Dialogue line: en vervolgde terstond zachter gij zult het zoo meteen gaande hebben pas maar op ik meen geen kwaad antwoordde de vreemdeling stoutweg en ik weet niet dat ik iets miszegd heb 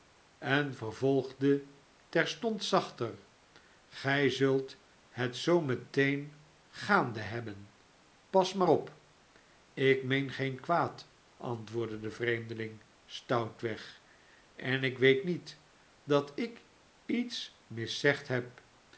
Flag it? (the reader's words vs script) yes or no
no